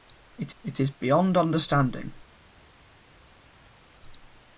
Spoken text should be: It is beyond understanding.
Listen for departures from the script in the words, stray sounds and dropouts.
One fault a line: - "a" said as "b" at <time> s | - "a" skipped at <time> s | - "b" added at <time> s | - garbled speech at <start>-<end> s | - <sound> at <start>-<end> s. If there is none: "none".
- "it" added at 0.6 s